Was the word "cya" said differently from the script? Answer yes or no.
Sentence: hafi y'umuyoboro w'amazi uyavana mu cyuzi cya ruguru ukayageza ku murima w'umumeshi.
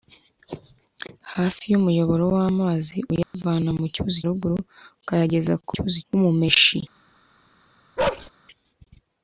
yes